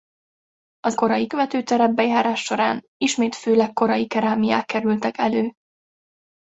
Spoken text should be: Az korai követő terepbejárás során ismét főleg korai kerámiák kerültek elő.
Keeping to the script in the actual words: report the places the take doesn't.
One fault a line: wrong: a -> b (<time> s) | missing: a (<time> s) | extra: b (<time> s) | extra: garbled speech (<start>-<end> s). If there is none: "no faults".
no faults